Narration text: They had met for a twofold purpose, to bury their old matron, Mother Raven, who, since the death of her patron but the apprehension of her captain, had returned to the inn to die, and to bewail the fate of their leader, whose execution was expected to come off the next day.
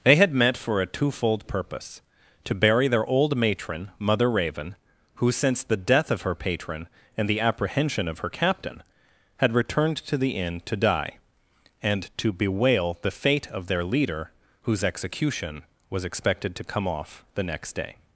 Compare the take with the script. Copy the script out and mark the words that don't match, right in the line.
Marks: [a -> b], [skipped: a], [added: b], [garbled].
They had met for a twofold purpose, to bury their old matron, Mother Raven, who, since the death of her patron [but -> and] the apprehension of her captain, had returned to the inn to die, and to bewail the fate of their leader, whose execution was expected to come off the next day.